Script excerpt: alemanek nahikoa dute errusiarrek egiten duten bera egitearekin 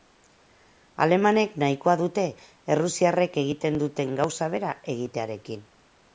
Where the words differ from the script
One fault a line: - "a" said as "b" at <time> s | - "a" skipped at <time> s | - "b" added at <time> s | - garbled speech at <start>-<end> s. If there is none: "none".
- "gauza" added at 4.2 s